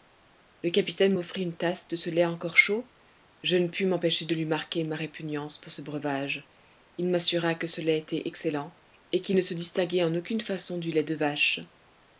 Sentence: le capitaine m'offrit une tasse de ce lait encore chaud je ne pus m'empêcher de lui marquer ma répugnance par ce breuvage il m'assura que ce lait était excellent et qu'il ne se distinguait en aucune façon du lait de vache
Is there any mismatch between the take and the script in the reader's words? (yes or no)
yes